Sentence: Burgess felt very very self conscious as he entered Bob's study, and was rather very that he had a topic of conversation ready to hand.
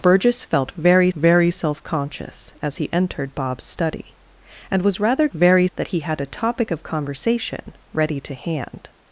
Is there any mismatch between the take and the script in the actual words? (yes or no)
no